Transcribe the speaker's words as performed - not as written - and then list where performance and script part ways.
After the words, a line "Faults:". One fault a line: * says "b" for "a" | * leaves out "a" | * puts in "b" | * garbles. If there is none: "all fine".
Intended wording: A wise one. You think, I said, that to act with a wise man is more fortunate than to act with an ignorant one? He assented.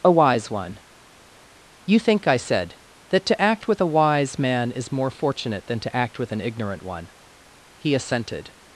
A wise one. You think, I said, that to act with a wise man is more fortunate than to act with an ignorant one? He assented.
Faults:
all fine